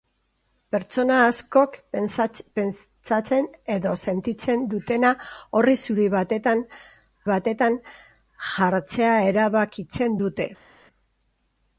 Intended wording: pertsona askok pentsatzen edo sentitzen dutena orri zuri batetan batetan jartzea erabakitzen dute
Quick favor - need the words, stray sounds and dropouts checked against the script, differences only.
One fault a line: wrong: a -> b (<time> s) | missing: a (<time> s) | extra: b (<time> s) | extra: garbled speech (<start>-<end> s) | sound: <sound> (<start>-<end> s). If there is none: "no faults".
no faults